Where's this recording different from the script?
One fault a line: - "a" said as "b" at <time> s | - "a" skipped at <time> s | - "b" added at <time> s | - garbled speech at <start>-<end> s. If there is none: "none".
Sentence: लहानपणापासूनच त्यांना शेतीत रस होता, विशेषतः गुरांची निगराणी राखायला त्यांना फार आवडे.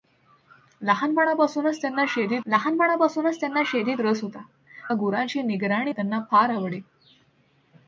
- "लहानपणापासूनच त्यांना शेतीत" added at 2.5 s
- "विशेषतः" skipped at 4.4 s
- "राखायला" skipped at 5.9 s